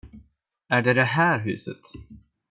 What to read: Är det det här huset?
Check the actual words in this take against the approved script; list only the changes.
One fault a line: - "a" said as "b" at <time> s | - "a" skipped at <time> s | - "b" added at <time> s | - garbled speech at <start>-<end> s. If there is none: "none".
none